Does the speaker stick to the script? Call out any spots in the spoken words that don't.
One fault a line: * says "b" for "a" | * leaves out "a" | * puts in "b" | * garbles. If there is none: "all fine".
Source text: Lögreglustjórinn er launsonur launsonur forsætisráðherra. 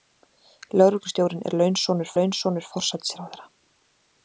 all fine